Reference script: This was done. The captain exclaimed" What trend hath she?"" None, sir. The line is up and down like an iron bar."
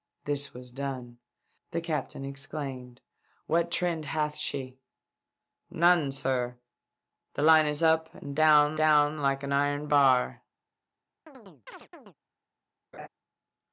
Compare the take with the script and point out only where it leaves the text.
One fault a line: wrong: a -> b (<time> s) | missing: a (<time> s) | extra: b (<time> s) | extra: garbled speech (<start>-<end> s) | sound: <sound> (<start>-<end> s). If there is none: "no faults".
extra: down (8.8 s)
sound: chirp (11.3-12.1 s)
sound: laugh (12.9-13.1 s)